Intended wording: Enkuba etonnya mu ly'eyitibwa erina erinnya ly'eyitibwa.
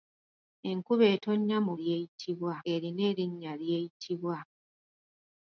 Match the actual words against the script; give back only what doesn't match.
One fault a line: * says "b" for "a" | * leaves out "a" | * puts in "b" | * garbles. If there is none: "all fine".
all fine